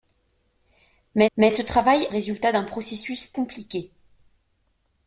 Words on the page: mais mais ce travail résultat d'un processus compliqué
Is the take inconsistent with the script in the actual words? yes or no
no